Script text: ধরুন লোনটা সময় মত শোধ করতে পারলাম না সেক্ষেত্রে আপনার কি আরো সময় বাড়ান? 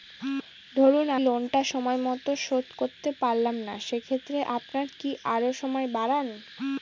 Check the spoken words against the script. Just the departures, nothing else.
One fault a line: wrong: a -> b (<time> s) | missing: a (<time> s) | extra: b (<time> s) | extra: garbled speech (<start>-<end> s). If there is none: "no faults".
no faults